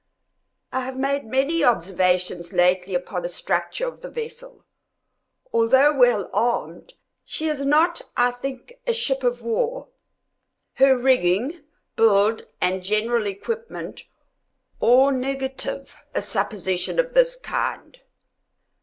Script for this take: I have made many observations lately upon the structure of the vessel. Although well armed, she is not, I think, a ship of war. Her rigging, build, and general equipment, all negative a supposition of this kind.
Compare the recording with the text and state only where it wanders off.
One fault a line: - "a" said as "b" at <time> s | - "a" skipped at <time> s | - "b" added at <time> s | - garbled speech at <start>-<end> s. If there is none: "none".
none